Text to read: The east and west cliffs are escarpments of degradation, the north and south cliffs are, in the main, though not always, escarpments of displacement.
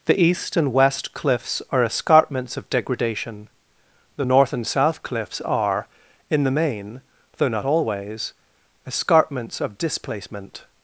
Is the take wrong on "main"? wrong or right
right